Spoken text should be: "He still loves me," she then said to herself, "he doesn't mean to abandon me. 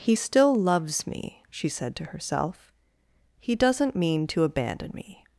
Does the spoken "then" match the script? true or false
false